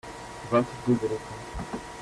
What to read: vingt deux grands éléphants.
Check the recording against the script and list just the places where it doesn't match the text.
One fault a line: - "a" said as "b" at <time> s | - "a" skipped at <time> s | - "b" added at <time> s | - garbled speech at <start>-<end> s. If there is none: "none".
- "grands" skipped at 0.9 s